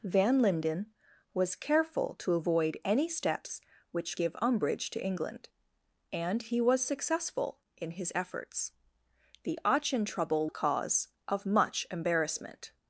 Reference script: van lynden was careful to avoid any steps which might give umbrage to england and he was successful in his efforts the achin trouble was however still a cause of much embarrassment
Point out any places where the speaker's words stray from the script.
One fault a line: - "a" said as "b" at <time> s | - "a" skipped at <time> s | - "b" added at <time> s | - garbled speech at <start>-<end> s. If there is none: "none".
- "might" skipped at 4.2 s
- "was however still" skipped at 10.5 s